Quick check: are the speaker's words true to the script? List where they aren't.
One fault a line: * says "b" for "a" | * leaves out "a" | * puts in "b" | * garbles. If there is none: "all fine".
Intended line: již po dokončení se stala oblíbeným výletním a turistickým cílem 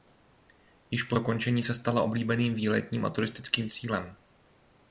all fine